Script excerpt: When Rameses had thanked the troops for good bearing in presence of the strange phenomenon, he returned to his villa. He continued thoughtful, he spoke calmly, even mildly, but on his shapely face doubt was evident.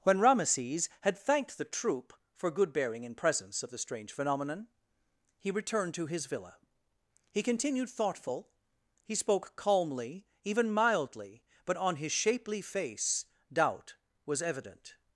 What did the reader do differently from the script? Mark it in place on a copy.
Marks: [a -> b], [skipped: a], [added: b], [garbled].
When Rameses had thanked the [troops -> troop] for good bearing in presence of the strange phenomenon, he returned to his villa. He continued thoughtful, he spoke calmly, even mildly, but on his shapely face doubt was evident.